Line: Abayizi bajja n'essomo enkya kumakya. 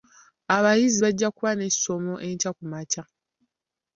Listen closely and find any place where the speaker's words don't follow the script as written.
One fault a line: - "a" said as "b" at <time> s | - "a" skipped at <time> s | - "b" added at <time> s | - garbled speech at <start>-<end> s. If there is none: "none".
- "kuba" added at 1.3 s